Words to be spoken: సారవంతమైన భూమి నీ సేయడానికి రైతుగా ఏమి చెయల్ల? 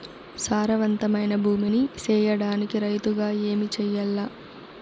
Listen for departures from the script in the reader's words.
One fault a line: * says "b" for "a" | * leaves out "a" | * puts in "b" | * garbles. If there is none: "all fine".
all fine